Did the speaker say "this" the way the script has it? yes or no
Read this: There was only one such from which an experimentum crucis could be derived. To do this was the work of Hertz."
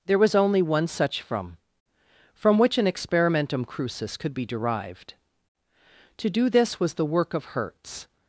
yes